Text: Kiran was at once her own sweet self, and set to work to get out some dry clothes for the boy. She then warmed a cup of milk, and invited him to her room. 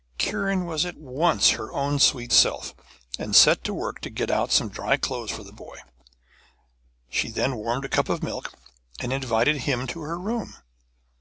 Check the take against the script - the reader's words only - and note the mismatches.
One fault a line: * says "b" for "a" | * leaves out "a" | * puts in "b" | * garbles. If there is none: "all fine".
all fine